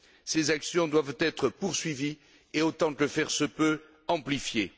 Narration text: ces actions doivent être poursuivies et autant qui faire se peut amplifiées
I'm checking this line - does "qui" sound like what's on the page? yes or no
no